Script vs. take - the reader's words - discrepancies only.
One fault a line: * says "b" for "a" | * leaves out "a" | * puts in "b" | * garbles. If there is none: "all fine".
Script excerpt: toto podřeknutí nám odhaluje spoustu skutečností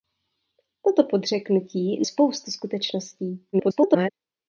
* leaves out "nám odhaluje"
* garbles